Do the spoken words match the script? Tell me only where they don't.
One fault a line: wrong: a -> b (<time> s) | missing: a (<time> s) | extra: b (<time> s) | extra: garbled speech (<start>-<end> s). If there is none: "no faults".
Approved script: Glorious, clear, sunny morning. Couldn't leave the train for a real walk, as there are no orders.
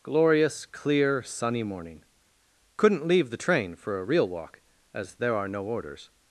no faults